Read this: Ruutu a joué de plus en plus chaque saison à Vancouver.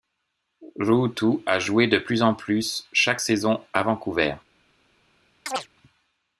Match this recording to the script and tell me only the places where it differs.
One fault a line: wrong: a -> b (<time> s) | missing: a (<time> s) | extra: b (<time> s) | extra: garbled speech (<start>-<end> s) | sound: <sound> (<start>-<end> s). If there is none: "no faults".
sound: chirp (5.5-5.7 s)